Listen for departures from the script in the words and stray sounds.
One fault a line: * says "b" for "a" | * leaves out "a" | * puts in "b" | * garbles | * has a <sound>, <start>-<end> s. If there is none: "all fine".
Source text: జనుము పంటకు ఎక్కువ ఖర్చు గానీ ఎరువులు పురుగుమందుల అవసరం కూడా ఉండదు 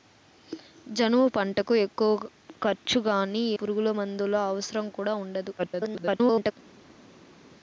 * leaves out "ఎరువులు"
* garbles